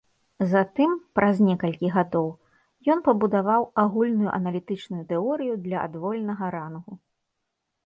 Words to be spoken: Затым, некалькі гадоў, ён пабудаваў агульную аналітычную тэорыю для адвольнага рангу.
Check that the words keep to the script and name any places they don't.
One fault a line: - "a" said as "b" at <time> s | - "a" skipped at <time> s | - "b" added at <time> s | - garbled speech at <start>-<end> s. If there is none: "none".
- "праз" added at 1.2 s